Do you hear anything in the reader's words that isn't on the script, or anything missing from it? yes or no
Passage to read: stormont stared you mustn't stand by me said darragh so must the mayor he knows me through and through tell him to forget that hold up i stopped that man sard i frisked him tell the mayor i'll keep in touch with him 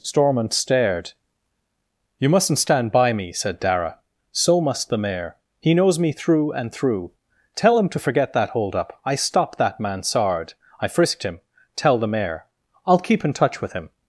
no